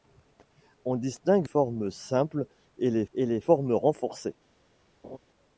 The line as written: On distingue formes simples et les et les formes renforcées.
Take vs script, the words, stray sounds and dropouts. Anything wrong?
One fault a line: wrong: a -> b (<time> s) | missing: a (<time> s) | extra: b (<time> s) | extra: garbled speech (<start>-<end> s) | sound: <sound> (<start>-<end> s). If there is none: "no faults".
sound: laugh (5.0-5.2 s)